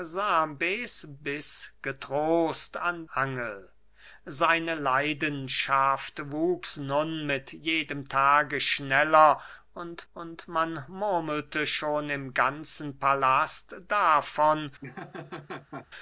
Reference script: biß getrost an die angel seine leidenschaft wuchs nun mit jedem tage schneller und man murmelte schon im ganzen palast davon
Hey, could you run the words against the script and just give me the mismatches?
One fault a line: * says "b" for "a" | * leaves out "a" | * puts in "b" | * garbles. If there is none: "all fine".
* leaves out "die"
* puts in "und"